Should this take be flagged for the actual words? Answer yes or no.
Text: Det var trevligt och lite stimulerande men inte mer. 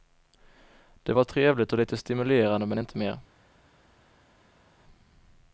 no